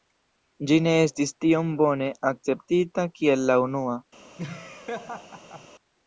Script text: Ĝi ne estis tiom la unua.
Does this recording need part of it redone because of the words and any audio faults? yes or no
yes